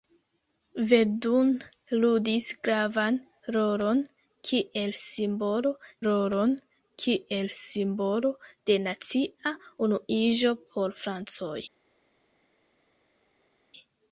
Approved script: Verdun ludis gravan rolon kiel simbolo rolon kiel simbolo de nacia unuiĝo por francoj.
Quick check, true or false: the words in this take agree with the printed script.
true